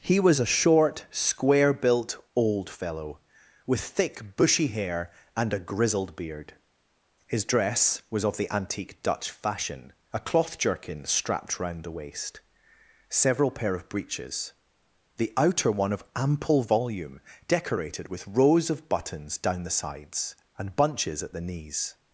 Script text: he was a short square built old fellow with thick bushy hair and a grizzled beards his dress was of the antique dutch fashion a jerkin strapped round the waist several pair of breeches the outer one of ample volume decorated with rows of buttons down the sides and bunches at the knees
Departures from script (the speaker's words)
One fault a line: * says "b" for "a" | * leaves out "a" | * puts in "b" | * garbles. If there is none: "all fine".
* says "beard" for "beards"
* puts in "cloth"